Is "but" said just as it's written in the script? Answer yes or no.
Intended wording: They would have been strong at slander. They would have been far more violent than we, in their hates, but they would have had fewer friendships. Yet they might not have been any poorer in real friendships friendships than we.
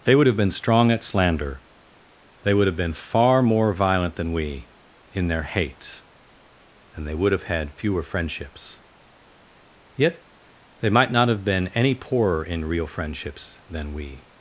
no